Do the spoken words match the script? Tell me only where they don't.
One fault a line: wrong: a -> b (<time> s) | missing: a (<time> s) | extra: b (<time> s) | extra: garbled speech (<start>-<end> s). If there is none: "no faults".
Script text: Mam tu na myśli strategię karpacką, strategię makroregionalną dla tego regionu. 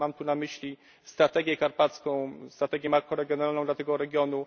no faults